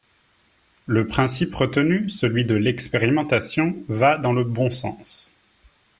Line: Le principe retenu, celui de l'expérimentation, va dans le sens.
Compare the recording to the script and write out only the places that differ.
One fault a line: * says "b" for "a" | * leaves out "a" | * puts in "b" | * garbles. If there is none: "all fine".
* puts in "bon"